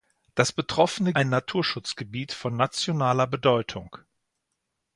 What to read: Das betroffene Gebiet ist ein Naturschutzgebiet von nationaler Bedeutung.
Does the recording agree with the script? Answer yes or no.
no